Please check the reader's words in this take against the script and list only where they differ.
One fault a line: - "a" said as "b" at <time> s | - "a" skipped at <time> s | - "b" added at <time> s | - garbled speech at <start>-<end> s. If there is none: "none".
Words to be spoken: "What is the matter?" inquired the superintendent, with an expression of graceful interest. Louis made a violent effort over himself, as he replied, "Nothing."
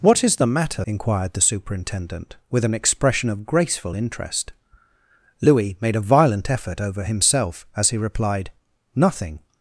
none